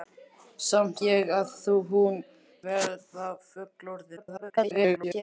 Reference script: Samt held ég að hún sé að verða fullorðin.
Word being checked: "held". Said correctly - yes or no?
no